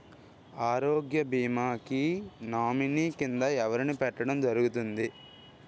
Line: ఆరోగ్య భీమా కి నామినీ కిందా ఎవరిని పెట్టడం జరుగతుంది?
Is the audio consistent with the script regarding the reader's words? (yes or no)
yes